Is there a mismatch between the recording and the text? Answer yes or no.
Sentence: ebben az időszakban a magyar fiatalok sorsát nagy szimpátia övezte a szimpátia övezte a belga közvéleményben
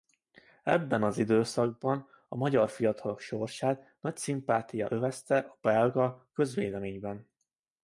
yes